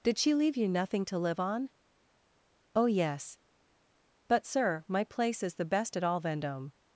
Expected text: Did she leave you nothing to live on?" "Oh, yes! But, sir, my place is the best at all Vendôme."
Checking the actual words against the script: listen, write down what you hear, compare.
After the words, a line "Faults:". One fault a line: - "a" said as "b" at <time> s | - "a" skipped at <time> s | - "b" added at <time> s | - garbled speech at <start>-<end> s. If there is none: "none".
Did she leave you nothing to live on?" "Oh, yes! But, sir, my place is the best at all Vendôme."
Faults:
none